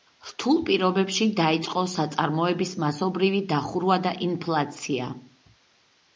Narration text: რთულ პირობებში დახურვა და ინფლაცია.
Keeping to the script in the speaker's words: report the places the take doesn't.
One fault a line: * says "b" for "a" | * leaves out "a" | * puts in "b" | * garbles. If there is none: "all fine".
* puts in "დაიწყო საწარმოების მასობრივი"